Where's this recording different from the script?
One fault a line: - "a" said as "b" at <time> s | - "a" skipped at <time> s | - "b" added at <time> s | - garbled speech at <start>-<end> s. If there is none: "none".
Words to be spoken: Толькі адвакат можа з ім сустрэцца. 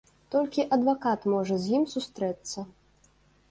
none